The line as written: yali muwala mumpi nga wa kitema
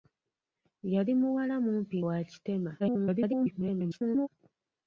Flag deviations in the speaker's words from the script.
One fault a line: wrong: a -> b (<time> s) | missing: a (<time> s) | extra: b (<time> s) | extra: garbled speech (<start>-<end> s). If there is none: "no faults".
missing: nga (2.0 s)
extra: garbled speech (2.8-4.3 s)